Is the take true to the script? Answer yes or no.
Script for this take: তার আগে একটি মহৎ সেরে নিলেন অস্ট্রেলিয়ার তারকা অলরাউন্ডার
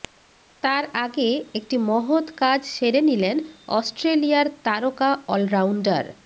no